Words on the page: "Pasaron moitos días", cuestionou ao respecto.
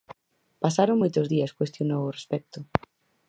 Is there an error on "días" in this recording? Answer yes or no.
no